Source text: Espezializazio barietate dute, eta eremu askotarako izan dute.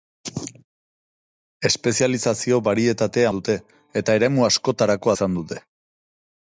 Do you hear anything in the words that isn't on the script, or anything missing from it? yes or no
no